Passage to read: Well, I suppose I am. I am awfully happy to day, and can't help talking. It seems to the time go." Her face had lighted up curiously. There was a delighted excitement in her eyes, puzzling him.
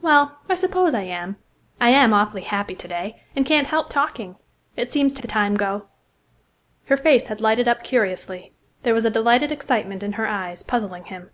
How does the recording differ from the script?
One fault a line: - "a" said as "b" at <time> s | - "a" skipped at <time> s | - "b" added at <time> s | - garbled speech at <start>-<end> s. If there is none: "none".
none